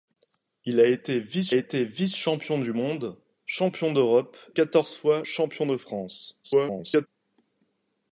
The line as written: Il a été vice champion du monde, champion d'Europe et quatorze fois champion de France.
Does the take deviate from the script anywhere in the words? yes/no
yes